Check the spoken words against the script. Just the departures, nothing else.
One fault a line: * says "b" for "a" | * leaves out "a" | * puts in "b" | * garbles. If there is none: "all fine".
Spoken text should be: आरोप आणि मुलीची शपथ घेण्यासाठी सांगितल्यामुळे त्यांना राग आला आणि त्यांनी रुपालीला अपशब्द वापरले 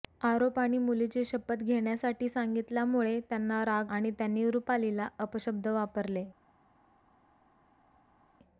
* leaves out "आला"